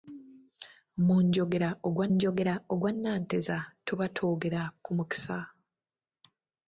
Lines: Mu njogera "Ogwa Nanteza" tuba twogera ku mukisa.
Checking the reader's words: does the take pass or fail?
fail